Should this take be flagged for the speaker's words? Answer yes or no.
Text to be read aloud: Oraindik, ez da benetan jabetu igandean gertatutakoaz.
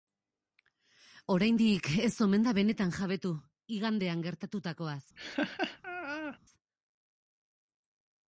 yes